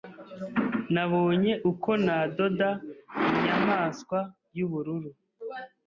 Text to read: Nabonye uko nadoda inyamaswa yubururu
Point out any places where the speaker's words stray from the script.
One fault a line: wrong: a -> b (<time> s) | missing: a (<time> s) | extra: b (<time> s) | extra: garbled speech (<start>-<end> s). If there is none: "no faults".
no faults